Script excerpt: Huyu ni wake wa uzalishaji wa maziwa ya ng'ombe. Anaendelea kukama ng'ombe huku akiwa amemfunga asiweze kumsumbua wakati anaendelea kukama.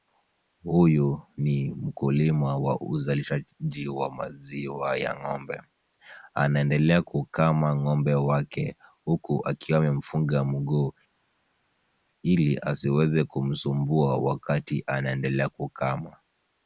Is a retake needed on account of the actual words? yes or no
yes